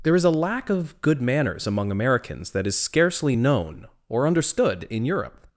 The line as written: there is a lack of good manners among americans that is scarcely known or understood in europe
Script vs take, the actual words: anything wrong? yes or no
no